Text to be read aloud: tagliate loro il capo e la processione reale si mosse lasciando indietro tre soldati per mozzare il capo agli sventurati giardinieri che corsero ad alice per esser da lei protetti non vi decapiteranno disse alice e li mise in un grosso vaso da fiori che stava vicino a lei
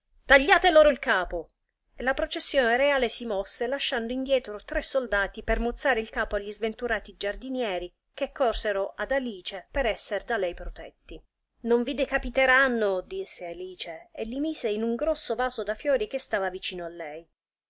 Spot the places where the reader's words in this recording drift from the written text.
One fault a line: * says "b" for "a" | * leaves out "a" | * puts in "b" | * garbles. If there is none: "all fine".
all fine